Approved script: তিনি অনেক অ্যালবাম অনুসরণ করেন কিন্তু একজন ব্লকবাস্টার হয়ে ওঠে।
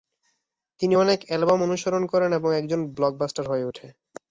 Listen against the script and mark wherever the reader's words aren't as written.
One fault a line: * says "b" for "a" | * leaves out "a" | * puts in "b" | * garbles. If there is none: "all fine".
* says "এবং" for "কিন্তু"